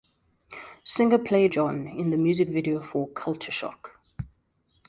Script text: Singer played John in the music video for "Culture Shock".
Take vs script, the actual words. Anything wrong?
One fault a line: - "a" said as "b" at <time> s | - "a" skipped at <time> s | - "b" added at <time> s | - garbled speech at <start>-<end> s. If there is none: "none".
none